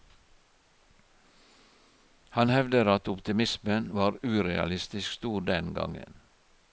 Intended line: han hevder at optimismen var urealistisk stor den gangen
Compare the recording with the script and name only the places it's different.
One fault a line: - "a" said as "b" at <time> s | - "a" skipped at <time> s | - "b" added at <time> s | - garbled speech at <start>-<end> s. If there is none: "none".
none